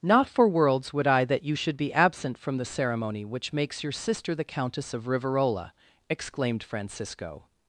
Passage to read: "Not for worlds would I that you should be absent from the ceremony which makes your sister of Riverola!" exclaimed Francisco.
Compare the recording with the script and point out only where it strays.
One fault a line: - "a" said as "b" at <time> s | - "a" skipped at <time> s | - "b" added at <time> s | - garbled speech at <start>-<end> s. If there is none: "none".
- "the Countess" added at 4.3 s